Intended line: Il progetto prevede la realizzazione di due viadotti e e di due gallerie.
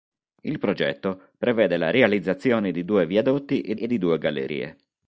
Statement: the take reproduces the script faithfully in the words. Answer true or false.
true